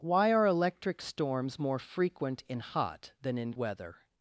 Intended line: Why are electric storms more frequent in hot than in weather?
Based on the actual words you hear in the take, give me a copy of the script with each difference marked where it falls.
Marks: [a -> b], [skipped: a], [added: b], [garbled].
Why are electric storms more frequent in hot than in weather?